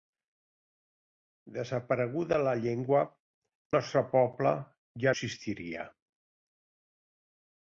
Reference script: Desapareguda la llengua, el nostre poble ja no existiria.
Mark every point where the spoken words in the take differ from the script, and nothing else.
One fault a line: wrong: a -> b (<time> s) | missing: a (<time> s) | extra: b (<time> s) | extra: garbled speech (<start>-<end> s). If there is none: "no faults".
missing: el (3.0 s)
missing: no (5.1 s)